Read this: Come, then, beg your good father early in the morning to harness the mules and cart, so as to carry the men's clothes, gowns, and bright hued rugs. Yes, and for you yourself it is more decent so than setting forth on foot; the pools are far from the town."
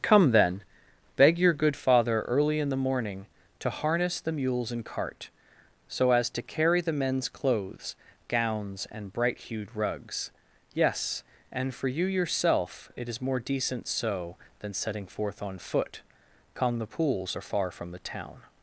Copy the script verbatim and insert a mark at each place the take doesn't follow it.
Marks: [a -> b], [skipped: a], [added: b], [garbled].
Come, then, beg your good father early in the morning to harness the mules and cart, so as to carry the men's clothes, gowns, and bright hued rugs. Yes, and for you yourself it is more decent so than setting forth on foot; [added: come] the pools are far from the town."